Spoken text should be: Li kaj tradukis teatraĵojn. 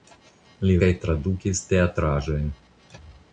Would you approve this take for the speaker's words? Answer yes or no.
yes